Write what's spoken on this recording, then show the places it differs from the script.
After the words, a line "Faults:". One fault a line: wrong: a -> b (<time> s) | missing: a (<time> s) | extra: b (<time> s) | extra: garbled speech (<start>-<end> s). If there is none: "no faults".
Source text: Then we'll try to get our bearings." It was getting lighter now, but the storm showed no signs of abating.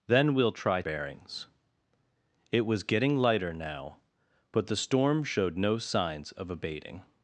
Then we'll try bearings." It was getting lighter now, but the storm showed no signs of abating.
Faults:
missing: to get our (0.8 s)